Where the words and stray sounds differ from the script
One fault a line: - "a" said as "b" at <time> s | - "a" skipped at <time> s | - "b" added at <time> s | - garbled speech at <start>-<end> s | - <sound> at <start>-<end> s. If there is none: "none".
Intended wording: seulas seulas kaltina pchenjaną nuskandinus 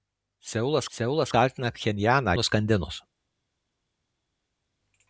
none